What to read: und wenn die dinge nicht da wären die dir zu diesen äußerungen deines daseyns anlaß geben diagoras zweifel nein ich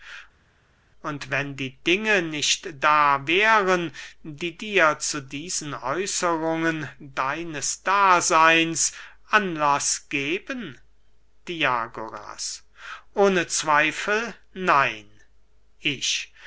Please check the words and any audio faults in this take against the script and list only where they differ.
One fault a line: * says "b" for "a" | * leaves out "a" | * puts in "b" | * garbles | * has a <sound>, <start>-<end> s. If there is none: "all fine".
* puts in "ohne"